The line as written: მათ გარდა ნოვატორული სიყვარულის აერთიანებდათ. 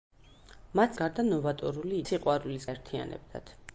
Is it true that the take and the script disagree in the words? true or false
false